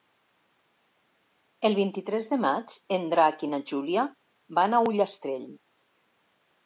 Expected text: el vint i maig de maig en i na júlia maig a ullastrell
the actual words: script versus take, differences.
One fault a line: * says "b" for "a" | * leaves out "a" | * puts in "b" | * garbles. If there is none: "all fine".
* says "tres" for "maig"
* puts in "drac"
* says "van" for "maig"